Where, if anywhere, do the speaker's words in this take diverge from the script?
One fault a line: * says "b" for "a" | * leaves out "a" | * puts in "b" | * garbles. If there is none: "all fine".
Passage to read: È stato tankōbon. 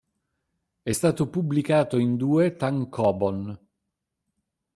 * puts in "pubblicato in due"